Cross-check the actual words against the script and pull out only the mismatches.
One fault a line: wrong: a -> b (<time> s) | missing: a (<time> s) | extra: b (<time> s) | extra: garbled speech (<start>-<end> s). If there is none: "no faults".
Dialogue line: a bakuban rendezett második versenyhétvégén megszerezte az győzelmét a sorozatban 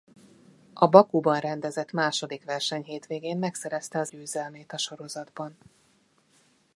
no faults